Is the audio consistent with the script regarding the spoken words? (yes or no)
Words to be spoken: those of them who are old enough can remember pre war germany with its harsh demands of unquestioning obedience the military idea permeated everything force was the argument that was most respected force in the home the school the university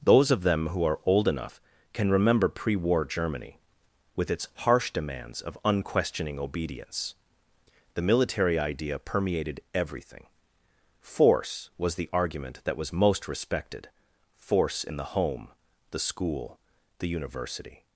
yes